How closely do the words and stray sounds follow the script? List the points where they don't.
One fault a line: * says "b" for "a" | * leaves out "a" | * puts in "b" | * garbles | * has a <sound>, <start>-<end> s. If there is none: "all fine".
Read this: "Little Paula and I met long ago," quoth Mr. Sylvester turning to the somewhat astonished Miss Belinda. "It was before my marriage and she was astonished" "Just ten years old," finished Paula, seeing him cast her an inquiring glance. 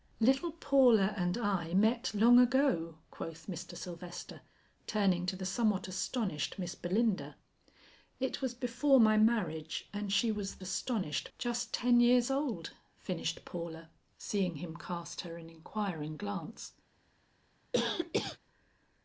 * has a cough, 17.7-18.4 s